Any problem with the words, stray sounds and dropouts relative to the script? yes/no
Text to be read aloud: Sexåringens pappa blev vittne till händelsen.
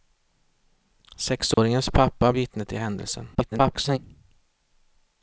yes